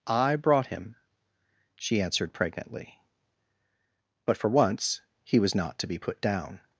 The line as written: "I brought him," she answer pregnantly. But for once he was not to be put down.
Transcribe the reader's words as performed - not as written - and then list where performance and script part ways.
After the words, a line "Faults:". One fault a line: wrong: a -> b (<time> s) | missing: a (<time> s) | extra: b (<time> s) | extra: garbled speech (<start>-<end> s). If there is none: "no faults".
"I brought him," she answered pregnantly. But for once he was not to be put down.
Faults:
wrong: answer -> answered (2.0 s)